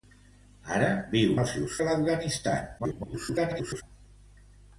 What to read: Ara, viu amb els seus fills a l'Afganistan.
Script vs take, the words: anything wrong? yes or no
yes